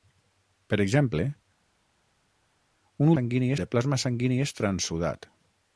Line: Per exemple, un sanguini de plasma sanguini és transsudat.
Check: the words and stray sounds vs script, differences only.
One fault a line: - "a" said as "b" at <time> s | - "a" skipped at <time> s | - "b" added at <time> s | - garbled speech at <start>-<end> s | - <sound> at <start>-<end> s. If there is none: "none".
none